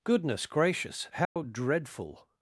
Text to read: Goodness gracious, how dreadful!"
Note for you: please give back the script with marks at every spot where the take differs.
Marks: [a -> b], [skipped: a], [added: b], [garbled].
Goodness gracious, how dreadful!"